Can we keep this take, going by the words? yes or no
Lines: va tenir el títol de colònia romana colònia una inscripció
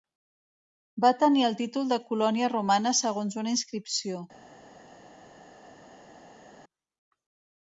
no